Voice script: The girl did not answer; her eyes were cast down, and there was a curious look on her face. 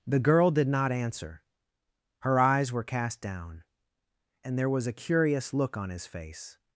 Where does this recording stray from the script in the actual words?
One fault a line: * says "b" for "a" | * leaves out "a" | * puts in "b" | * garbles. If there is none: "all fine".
* says "his" for "her"